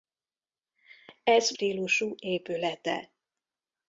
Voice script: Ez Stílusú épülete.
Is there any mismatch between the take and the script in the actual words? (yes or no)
no